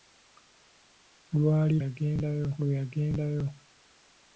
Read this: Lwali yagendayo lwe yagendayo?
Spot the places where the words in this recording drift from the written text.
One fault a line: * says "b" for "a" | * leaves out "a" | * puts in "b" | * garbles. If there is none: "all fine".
all fine